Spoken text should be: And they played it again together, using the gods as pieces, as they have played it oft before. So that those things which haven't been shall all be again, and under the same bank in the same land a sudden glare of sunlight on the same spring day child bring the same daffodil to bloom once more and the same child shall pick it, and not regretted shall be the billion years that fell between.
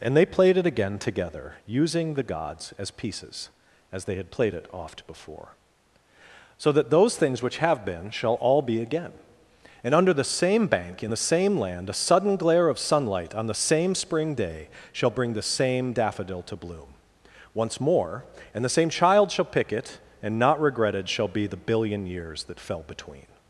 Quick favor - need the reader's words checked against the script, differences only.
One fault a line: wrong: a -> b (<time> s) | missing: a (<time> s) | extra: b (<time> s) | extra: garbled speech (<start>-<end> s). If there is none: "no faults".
wrong: have -> had (4.2 s)
wrong: haven't -> have (7.6 s)
wrong: child -> shall (14.9 s)